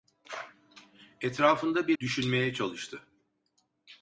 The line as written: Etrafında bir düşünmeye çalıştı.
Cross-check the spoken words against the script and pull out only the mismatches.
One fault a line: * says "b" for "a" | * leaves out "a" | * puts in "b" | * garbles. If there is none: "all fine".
all fine